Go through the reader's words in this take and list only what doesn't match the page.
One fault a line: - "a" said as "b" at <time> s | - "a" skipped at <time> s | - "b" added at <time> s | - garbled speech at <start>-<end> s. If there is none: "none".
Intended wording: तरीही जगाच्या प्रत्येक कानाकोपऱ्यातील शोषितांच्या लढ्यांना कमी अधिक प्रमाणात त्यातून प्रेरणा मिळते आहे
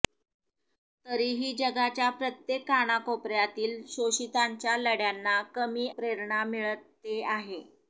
- "अधिक प्रमाणात त्यातून" skipped at 5.9 s